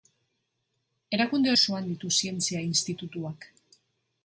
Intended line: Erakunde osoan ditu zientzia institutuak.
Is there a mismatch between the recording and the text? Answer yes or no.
no